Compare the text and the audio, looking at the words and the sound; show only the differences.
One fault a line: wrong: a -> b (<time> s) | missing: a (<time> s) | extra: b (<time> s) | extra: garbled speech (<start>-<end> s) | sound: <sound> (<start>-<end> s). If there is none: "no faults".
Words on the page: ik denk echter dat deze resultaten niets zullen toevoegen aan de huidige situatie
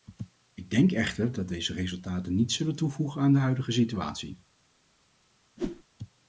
sound: whoosh (5.6-5.8 s)